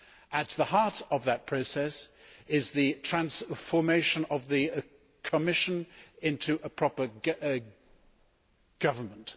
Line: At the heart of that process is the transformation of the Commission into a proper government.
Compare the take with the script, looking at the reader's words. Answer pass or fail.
pass